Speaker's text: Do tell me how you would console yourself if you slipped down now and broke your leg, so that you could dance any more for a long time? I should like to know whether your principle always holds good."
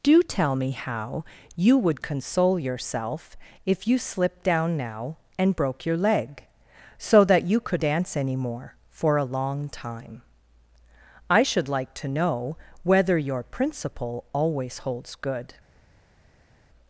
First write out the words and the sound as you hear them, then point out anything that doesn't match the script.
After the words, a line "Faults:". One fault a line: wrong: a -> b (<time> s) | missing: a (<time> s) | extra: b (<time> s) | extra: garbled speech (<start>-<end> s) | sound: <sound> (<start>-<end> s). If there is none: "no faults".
Do tell me how you would console yourself if you slipped down now and broke your leg, so that you could dance any more for a long time? I should like to know whether your principle always holds good."
Faults:
no faults